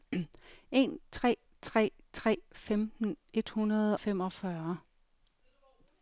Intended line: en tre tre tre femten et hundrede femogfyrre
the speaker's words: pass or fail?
pass